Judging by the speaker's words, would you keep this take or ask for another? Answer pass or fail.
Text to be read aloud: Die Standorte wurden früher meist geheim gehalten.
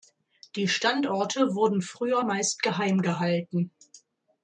pass